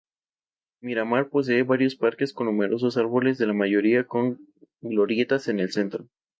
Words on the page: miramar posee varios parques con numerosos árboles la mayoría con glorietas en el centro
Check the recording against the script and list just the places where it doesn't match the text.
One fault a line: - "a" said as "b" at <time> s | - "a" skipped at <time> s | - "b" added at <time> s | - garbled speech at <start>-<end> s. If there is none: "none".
none